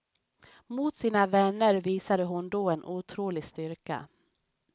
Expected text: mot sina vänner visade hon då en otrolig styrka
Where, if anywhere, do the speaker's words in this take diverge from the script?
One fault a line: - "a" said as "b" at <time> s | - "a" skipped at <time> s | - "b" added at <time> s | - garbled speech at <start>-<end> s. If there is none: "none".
none